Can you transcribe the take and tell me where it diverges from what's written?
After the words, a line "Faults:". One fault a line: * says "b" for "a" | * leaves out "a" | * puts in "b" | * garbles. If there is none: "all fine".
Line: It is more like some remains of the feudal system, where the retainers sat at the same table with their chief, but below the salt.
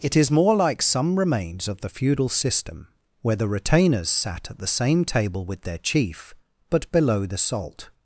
It is more like some remains of the feudal system, where the retainers sat at the same table with their chief, but below the salt.
Faults:
all fine